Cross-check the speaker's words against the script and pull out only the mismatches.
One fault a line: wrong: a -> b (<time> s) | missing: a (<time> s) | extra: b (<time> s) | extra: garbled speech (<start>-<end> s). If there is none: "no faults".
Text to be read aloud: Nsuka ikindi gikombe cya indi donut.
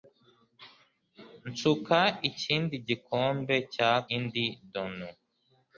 no faults